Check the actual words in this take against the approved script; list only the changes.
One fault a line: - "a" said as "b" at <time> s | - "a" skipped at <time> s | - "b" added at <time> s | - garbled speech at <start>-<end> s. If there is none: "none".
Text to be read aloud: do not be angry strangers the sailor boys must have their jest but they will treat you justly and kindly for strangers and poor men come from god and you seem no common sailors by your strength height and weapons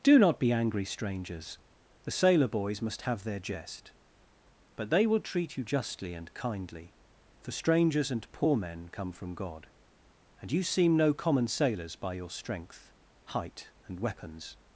none